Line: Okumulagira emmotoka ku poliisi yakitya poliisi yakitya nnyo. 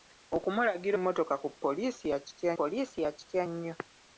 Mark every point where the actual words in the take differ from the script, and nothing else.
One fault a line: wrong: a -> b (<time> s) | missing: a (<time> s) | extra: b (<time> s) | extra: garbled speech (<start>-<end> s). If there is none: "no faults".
no faults